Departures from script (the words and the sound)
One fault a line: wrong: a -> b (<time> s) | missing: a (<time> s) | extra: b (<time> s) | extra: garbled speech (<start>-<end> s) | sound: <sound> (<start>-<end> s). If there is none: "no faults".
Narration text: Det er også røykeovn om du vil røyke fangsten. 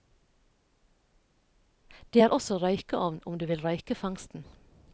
no faults